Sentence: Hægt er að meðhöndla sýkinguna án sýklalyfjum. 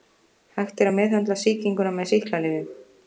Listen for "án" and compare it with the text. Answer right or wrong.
wrong